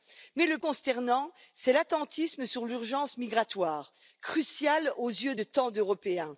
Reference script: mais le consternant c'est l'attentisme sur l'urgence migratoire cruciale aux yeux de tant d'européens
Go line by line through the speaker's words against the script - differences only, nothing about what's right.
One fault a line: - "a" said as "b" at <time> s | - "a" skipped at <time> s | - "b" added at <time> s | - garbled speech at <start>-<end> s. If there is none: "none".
none